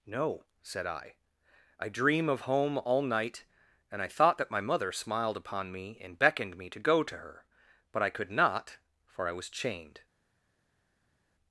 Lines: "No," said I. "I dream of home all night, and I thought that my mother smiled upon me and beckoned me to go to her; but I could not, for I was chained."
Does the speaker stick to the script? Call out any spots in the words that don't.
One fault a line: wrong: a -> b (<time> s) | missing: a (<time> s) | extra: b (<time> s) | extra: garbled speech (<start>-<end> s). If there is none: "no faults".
no faults